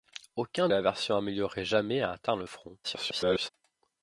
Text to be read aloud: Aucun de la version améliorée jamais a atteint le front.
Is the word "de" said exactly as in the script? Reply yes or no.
no